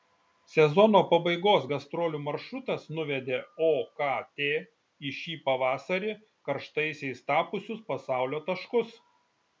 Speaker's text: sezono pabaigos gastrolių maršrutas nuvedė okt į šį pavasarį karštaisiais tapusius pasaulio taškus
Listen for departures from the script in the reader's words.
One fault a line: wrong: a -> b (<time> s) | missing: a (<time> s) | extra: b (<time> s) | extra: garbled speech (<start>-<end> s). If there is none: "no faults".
no faults